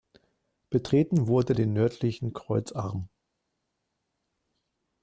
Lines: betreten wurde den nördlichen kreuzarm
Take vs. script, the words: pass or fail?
pass